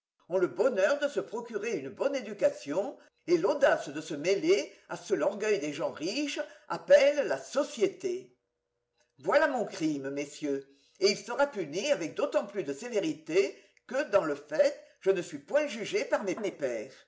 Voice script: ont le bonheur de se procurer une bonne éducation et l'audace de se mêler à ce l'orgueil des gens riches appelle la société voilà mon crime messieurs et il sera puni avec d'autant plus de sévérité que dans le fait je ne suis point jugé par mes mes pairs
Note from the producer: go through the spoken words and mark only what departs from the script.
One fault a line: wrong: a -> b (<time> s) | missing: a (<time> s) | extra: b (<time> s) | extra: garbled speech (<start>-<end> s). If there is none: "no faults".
no faults